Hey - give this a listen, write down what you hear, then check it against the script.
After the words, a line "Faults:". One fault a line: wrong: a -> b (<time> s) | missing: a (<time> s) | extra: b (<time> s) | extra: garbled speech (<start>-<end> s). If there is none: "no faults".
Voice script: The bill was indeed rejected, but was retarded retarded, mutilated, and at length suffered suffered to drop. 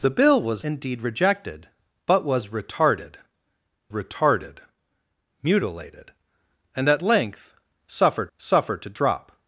The bill was indeed rejected, but was retarded retarded, mutilated, and at length suffered suffered to drop.
Faults:
no faults